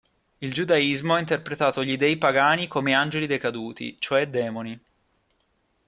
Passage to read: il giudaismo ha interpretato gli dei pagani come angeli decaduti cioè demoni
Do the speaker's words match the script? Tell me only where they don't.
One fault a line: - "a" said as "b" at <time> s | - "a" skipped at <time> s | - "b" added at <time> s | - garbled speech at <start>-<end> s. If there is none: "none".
none